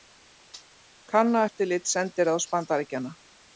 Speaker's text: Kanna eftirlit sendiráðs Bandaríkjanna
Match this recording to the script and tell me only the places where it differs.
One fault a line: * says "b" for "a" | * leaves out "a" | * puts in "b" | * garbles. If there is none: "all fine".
all fine